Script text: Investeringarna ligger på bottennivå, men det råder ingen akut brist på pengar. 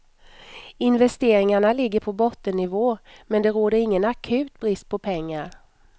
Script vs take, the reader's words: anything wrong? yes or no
no